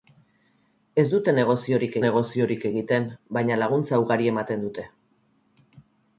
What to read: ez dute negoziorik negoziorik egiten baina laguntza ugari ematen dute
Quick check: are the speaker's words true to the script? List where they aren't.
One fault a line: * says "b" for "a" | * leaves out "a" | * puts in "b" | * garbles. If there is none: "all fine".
all fine